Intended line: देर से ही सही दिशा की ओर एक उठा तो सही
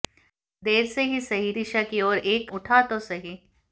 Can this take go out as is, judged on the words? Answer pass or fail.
pass